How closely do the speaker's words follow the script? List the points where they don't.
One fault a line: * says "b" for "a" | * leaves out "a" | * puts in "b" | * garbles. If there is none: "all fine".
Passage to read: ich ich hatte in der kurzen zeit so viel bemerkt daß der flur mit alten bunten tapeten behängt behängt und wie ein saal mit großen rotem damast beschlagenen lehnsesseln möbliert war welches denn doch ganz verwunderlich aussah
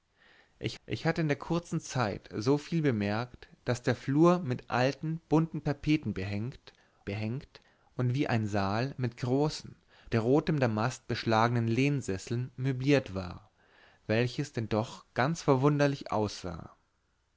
all fine